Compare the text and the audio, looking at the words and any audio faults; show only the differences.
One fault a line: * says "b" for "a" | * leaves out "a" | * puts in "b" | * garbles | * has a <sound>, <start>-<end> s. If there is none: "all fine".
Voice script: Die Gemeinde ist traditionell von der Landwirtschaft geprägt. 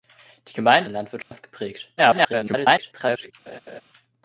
* leaves out "ist traditionell von"
* has a dropout, 1.2-1.3 s
* garbles
* has a laugh, 3.5-3.8 s